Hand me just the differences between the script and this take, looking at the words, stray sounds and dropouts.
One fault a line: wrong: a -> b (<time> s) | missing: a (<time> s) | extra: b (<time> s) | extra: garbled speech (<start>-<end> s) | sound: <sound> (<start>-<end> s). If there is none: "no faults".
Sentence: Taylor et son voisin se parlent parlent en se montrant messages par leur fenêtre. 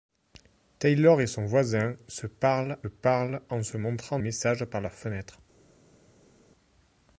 no faults